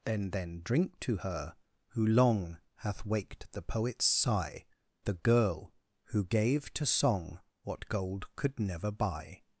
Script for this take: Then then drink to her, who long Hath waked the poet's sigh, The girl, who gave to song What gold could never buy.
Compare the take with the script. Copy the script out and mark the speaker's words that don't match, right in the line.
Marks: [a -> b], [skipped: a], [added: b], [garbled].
Then then drink to her, who long Hath waked the poet's sigh, The girl, who gave to song What gold could never buy.